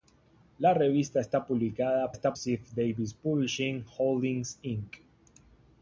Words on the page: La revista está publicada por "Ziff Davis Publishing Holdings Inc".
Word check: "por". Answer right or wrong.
wrong